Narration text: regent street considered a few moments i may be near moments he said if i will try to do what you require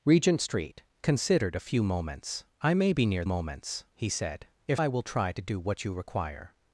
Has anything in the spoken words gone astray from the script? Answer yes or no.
no